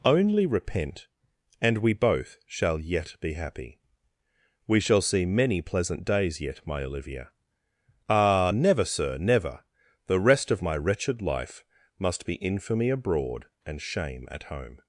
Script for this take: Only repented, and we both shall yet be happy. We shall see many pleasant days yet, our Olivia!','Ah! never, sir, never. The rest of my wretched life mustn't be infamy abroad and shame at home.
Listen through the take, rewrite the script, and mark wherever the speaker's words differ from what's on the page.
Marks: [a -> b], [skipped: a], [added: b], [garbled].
Only [repented, -> repent] and we both shall yet be happy. We shall see many pleasant days yet, [our -> my] Olivia!','Ah! never, sir, never. The rest of my wretched life [mustn't -> must] be infamy abroad and shame at home.